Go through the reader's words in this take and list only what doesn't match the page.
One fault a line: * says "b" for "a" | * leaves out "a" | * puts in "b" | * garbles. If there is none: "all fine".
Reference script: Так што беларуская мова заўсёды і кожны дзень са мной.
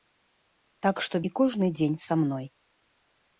* leaves out "беларуская мова заўсёды"